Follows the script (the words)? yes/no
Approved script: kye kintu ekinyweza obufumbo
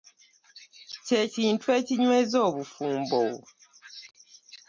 yes